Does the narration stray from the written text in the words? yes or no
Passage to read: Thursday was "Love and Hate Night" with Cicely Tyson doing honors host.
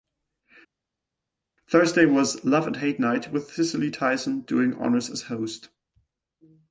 yes